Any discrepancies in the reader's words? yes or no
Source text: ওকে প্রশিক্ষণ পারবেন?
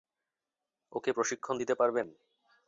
yes